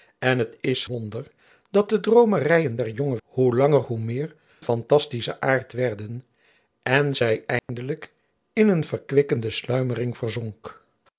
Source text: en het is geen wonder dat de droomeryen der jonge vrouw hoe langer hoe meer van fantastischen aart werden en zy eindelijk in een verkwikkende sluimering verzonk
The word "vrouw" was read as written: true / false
false